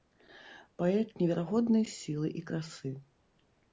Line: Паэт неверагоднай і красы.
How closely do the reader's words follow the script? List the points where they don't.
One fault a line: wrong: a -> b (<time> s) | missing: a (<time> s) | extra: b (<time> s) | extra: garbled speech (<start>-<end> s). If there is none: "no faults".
extra: сілы (2.0 s)